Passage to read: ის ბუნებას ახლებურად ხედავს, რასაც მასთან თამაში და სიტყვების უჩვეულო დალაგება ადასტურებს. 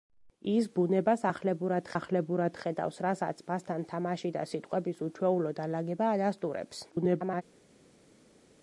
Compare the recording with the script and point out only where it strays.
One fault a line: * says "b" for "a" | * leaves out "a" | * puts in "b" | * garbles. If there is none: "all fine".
* puts in "ახლებურად"
* garbles